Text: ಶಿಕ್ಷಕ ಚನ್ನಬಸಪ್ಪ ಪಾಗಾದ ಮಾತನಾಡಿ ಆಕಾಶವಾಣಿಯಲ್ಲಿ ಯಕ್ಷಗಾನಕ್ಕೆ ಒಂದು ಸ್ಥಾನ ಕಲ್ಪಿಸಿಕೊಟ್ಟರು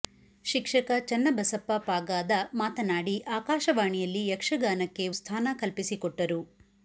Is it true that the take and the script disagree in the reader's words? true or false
true